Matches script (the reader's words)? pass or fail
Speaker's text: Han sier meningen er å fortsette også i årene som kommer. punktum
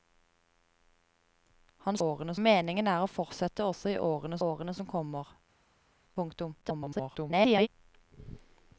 fail